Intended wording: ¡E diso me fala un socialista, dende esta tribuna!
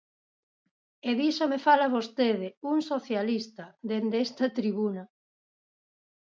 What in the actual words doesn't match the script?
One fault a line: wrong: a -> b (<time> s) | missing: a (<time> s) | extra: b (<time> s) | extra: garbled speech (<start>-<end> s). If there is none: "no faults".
extra: vostede (2.0 s)